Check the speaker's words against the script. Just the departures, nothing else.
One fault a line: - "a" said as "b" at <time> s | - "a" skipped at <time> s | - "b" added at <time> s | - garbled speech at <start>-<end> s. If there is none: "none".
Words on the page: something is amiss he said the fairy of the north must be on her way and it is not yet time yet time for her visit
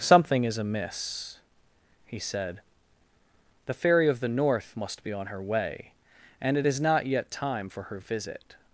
- "yet time" skipped at 7.7 s